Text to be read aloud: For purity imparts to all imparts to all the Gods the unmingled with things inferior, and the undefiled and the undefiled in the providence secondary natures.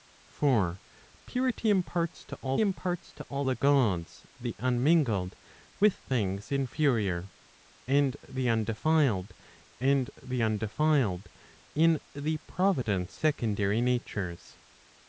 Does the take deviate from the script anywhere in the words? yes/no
no